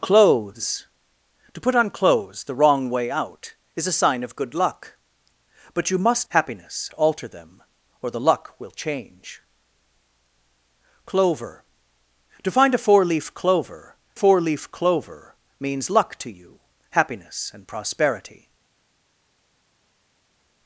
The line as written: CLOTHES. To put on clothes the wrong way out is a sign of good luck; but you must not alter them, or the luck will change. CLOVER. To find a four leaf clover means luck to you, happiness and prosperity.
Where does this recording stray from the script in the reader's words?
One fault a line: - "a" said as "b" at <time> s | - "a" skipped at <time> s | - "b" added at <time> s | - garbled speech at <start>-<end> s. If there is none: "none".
- "not" said as "happiness" at 6.3 s
- "four leaf clover" added at 14.1 s